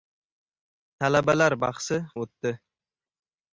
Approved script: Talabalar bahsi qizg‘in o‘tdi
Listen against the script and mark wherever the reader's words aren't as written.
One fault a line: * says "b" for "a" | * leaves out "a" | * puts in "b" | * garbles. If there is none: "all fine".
* leaves out "qizg‘in"